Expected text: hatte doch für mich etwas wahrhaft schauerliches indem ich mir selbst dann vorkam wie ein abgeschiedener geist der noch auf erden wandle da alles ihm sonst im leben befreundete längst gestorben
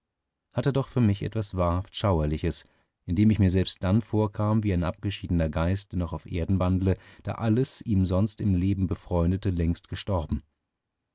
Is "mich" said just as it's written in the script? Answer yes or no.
yes